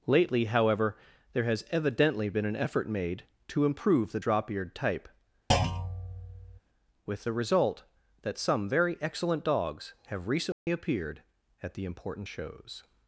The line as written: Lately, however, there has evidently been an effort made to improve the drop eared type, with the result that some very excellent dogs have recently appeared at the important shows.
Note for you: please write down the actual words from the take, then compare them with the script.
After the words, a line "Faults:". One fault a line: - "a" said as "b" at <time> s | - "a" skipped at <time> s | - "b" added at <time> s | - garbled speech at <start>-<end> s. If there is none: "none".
Lately, however, there has evidently been an effort made to improve the drop eared type, with the result that some very excellent dogs have recently appeared at the important shows.
Faults:
none